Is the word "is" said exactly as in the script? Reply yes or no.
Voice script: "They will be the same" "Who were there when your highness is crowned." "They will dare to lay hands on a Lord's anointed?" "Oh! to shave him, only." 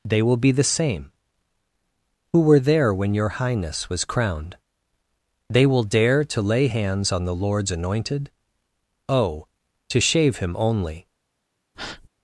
no